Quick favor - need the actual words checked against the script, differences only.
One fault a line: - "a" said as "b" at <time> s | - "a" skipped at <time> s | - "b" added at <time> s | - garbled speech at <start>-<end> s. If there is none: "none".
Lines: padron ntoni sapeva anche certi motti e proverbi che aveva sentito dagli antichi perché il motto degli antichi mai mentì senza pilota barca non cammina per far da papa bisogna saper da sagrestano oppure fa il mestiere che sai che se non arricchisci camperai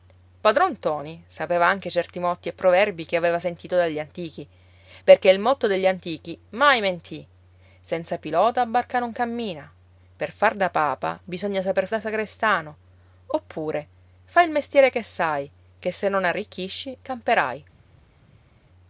none